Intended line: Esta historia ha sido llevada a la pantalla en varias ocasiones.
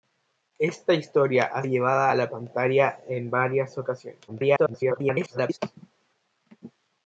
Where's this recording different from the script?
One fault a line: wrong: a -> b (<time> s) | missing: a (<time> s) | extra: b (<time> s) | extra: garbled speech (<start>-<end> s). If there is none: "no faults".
missing: sido (1.6 s)
extra: garbled speech (4.3-5.6 s)